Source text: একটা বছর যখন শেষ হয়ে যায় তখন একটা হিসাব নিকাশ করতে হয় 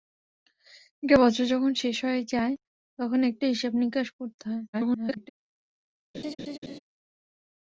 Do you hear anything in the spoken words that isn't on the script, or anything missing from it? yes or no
yes